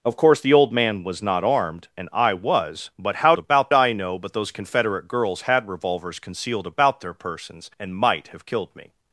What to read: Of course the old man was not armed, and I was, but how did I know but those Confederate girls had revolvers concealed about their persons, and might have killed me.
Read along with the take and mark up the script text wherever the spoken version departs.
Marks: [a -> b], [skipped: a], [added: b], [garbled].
Of course the old man was not armed, and I was, but how [did -> about] I know but those Confederate girls had revolvers concealed about their persons, and might have killed me.